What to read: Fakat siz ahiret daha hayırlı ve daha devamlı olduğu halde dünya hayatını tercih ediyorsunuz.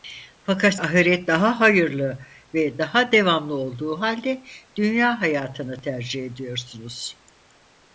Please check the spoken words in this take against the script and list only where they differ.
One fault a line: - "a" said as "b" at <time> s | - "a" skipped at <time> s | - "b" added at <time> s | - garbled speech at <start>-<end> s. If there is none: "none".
- "siz" skipped at 0.8 s